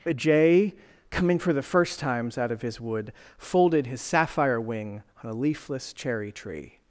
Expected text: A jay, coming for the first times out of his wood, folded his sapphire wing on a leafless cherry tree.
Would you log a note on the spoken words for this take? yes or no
no